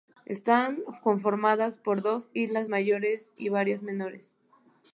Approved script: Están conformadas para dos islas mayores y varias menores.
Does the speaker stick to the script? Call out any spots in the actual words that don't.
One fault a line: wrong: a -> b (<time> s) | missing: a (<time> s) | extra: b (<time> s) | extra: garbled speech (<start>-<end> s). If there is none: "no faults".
wrong: para -> por (1.8 s)